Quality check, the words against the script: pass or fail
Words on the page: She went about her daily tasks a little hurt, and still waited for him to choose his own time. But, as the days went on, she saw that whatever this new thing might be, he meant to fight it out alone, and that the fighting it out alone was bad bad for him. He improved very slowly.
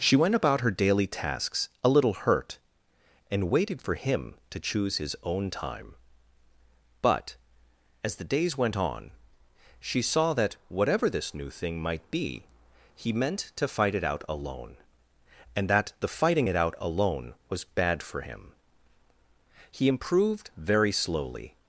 fail